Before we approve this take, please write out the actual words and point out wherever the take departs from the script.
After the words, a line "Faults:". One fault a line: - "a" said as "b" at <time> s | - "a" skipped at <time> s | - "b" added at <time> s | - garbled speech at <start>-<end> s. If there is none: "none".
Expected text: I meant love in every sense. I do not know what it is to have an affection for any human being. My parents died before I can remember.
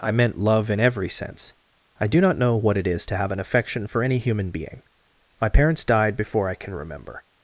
I meant love in every sense. I do not know what it is to have an affection for any human being. My parents died before I can remember.
Faults:
none